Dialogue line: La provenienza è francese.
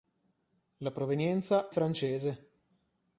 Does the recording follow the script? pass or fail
fail